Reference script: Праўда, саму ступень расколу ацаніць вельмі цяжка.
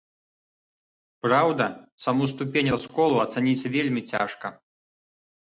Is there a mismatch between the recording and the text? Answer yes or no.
no